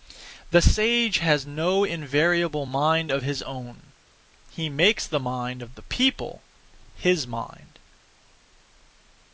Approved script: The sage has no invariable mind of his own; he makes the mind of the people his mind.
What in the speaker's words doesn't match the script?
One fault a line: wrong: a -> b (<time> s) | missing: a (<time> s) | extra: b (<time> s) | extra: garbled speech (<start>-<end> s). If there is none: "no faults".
no faults